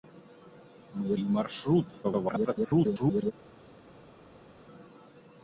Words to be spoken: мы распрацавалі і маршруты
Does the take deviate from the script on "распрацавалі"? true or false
true